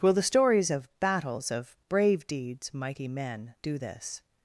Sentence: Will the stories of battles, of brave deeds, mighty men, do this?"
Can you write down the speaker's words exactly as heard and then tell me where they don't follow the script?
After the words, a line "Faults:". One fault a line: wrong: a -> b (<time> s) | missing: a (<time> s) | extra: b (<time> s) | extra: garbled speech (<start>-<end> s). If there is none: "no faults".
Will the stories of battles, of brave deeds, mighty men, do this?"
Faults:
no faults